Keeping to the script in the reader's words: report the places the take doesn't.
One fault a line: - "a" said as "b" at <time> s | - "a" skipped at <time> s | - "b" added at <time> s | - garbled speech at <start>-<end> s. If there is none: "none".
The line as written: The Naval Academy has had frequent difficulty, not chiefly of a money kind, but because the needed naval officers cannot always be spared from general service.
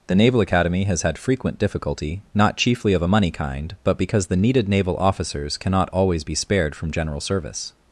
none